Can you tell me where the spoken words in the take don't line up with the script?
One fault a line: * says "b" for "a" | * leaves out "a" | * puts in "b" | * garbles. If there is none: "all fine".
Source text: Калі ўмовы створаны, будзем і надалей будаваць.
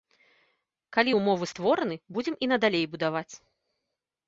all fine